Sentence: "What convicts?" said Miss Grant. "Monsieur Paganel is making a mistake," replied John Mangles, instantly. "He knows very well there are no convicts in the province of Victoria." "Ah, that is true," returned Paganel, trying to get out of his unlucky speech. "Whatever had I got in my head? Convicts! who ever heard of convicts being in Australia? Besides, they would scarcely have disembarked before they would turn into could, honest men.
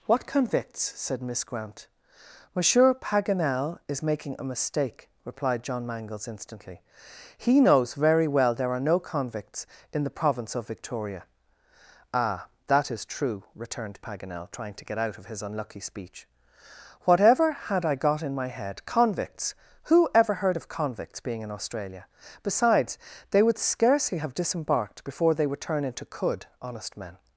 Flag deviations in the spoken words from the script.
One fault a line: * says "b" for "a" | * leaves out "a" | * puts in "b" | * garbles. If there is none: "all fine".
all fine